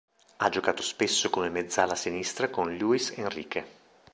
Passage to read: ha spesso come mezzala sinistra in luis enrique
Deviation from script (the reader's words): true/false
true